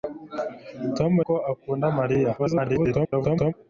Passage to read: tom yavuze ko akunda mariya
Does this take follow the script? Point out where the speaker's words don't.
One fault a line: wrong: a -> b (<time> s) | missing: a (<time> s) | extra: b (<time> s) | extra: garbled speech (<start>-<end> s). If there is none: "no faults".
missing: yavuze (1.1 s)
extra: garbled speech (2.4-3.5 s)